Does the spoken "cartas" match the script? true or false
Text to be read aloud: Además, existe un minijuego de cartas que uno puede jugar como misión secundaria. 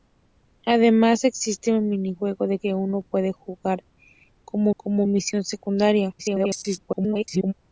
false